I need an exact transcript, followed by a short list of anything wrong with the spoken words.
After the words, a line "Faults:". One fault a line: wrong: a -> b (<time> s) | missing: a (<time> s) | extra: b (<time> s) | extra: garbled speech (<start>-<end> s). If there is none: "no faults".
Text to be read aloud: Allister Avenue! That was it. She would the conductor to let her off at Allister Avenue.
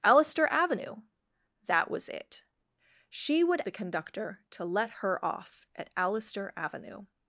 Allister Avenue! That was it. She would the conductor to let her off at Allister Avenue.
Faults:
no faults